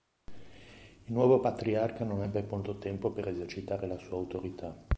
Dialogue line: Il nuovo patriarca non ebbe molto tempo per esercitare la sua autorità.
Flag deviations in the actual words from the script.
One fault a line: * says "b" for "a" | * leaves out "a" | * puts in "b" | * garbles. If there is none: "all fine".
all fine